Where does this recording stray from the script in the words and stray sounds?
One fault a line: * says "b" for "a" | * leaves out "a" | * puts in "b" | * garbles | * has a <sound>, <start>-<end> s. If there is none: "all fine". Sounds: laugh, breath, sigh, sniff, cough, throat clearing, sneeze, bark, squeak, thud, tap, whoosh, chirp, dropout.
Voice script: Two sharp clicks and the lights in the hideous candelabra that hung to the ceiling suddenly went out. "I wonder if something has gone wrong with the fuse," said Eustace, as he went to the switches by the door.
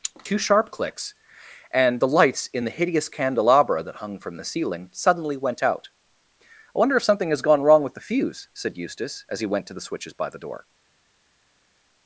* says "from" for "to"